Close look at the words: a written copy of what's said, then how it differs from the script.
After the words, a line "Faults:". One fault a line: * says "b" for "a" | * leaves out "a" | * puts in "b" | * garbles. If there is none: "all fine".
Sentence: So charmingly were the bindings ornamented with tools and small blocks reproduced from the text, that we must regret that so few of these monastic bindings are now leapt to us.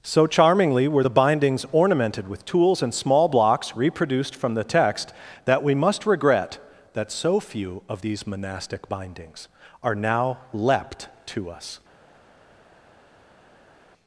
So charmingly were the bindings ornamented with tools and small blocks reproduced from the text, that we must regret that so few of these monastic bindings are now leapt to us.
Faults:
all fine